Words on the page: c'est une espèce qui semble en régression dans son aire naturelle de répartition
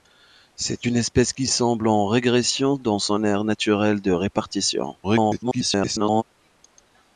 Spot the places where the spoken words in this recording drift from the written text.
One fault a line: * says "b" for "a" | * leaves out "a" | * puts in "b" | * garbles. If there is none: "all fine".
* garbles